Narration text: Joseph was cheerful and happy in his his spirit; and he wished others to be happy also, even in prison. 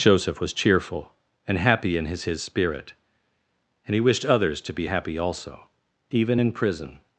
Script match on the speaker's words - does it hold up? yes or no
yes